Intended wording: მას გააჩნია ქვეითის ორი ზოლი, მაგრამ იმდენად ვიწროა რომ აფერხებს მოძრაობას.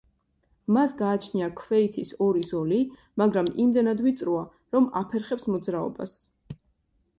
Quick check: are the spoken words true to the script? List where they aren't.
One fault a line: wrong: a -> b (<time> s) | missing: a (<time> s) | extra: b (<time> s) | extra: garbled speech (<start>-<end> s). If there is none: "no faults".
no faults